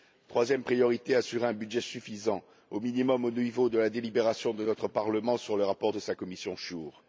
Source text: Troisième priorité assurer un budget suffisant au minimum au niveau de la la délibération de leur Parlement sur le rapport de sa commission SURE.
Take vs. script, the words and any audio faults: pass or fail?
fail